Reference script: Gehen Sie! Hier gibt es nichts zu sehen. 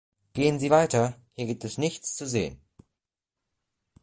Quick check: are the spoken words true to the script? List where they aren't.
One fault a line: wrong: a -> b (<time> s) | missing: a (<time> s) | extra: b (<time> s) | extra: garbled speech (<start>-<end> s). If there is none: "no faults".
extra: weiter (0.7 s)